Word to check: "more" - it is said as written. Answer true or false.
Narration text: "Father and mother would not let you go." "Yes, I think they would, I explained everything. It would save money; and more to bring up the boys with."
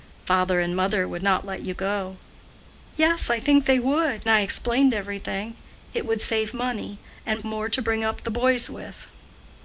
true